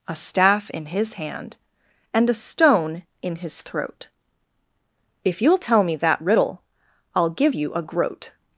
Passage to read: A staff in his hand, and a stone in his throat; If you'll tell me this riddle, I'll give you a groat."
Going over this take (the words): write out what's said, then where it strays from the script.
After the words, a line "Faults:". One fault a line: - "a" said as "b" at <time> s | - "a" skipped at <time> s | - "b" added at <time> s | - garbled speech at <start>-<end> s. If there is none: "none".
A staff in his hand, and a stone in his throat; If you'll tell me that riddle, I'll give you a groat."
Faults:
- "this" said as "that" at 6.0 s